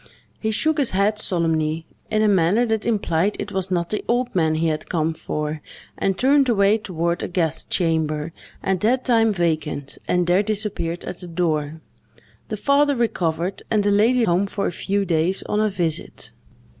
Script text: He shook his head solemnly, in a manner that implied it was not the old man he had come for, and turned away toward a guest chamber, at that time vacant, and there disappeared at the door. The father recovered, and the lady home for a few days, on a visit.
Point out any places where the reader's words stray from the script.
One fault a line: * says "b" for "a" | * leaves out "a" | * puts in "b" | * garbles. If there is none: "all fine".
all fine